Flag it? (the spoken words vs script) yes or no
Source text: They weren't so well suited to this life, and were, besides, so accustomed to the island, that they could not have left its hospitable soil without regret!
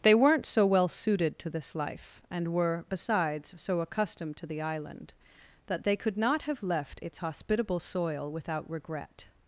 no